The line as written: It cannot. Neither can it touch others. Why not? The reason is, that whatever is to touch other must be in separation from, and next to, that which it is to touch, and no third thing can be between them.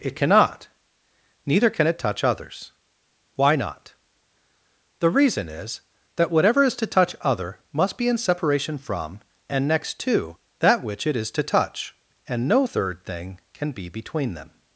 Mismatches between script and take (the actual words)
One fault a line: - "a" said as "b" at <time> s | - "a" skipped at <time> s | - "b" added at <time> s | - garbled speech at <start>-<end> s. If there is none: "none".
none